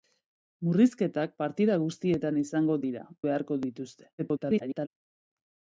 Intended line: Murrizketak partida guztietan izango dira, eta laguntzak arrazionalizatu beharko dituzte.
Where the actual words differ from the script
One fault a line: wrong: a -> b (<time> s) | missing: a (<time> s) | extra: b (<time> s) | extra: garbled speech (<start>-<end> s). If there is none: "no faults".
missing: eta laguntzak arrazionalizatu (3.0 s)
extra: garbled speech (4.2-4.9 s)